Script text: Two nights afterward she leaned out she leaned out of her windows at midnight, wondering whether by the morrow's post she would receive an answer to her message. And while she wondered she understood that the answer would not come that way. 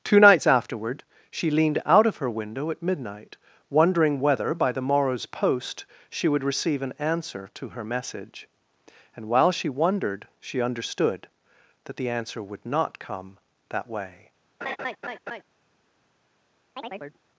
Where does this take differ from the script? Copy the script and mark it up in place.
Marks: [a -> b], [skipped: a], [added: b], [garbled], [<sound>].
Two nights afterward she leaned out [skipped: she leaned out] of her [windows -> window] at midnight, wondering whether by the morrow's post she would receive an answer to her message. And while she wondered she understood that the answer would not come that way. [laugh] [chirp]